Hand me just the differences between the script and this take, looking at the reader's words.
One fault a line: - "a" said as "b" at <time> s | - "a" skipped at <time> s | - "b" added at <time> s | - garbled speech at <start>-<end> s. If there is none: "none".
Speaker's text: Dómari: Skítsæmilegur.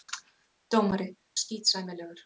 none